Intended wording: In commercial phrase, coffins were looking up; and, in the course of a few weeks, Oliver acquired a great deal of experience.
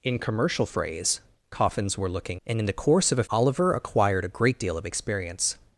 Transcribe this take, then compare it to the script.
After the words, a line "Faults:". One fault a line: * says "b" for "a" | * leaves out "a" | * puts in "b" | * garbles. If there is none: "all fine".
In commercial phrase, coffins were looking; and, in the course of a Oliver acquired a great deal of experience.
Faults:
* leaves out "up"
* leaves out "few weeks"